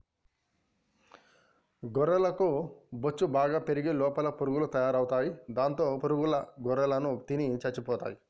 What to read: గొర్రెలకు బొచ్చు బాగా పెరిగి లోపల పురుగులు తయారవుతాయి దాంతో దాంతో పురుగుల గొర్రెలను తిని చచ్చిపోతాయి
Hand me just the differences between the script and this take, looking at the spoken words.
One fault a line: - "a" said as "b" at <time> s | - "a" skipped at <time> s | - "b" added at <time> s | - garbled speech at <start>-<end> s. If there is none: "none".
- "దాంతో" skipped at 5.8 s